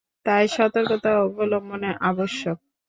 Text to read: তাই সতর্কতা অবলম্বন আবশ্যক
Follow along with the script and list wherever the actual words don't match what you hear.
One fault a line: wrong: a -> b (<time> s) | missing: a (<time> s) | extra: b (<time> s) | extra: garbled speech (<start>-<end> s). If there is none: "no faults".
no faults